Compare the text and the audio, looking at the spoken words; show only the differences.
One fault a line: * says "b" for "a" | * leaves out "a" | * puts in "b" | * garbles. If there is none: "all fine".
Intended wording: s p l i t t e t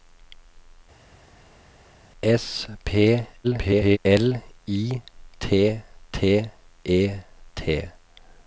* garbles